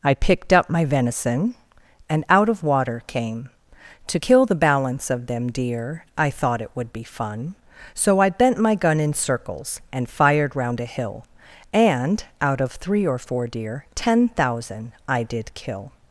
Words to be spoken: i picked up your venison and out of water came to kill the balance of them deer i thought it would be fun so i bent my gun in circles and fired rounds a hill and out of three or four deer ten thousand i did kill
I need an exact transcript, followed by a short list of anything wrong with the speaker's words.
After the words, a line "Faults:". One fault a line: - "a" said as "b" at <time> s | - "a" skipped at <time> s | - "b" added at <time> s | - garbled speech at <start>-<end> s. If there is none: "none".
i picked up my venison and out of water came to kill the balance of them deer i thought it would be fun so i bent my gun in circles and fired round a hill and out of three or four deer ten thousand i did kill
Faults:
- "your" said as "my" at 0.7 s
- "rounds" said as "round" at 10.5 s